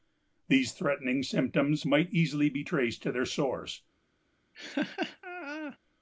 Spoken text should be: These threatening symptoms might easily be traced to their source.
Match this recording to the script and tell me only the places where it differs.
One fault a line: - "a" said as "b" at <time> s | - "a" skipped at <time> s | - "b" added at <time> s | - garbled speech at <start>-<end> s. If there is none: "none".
none